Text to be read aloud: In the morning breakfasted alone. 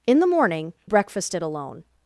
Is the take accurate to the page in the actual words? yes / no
yes